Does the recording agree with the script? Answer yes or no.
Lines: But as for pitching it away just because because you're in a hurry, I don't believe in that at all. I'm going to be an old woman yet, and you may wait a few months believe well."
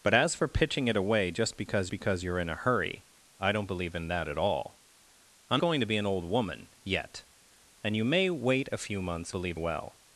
yes